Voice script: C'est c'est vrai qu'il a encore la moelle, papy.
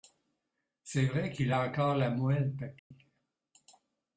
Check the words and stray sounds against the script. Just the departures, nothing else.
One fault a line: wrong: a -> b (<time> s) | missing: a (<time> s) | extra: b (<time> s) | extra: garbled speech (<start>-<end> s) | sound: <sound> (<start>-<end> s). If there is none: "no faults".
missing: c'est (1.1 s)
sound: dropout (2.8-2.9 s)